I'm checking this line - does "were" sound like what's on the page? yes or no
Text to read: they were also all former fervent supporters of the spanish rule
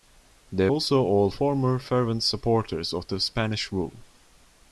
no